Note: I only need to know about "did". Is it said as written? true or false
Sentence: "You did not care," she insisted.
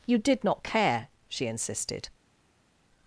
true